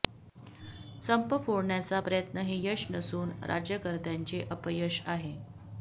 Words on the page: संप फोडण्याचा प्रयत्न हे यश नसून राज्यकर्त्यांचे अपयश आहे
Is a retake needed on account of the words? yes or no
no